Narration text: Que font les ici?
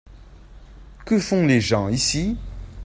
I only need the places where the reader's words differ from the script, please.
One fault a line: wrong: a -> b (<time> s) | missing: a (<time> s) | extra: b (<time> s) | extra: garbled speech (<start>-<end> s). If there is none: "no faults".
extra: gens (1.6 s)